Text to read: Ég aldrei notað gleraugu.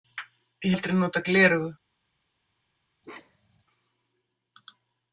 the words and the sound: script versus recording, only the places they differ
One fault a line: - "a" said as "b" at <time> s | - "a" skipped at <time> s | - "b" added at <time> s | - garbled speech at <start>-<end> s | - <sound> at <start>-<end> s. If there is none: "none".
- bark at 3.0-3.6 s